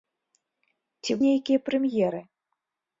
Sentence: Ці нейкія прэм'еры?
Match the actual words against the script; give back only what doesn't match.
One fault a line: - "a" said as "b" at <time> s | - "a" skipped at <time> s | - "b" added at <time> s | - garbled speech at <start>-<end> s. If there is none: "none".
none